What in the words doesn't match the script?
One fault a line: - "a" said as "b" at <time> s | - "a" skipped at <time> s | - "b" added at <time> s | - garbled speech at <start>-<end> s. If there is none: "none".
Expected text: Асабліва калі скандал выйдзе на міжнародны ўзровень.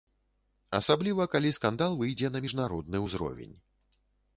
none